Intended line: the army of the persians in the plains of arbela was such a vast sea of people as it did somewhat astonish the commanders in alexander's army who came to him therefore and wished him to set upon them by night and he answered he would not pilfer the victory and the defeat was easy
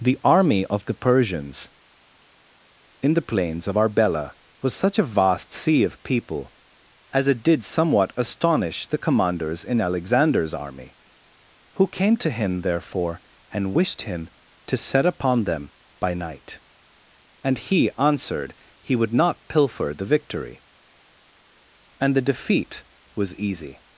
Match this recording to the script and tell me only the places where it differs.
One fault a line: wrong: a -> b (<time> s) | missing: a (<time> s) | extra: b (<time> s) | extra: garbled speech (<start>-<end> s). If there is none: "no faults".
no faults